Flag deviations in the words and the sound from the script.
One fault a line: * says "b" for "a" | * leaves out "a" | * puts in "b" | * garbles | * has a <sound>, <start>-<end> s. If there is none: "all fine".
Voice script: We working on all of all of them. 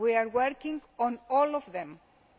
* puts in "are"
* leaves out "all of"